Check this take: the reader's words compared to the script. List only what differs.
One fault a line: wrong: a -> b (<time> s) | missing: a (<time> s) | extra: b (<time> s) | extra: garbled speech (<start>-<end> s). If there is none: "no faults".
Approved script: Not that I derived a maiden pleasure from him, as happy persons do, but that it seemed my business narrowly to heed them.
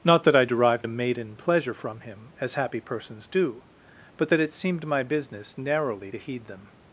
no faults